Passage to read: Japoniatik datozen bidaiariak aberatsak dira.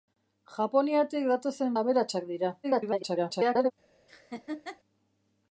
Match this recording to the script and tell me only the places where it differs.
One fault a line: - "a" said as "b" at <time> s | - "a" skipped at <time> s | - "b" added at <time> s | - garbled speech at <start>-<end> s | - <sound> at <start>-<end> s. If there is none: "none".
- "bidaiariak" skipped at 1.8 s
- garbled speech at 2.6-3.7 s
- laugh at 4.1-4.8 s